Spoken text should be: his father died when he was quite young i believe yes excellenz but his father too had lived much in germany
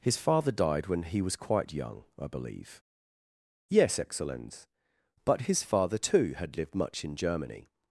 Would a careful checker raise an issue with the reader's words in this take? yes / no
no